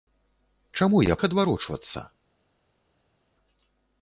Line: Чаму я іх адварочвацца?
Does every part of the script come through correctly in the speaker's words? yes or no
yes